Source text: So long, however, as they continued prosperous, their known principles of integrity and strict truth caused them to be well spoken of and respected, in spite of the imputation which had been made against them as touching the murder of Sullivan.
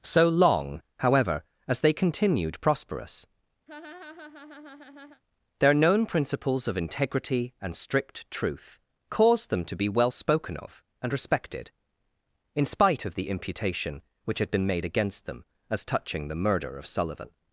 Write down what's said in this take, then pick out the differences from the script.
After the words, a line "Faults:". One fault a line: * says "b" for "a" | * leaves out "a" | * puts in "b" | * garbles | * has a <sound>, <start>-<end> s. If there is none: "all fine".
So long, however, as they continued prosperous, their known principles of integrity and strict truth caused them to be well spoken of and respected, in spite of the imputation which had been made against them as touching the murder of Sullivan.
Faults:
* has a laugh, 3.7-5.2 s